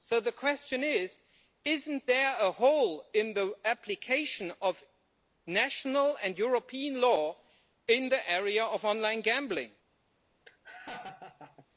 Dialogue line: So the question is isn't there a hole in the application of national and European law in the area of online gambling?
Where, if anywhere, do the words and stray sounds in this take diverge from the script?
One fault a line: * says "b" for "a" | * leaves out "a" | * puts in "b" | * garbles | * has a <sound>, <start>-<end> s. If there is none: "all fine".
* has a laugh, 10.5-11.7 s